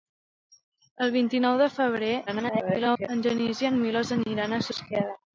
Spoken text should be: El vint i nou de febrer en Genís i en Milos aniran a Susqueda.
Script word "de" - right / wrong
right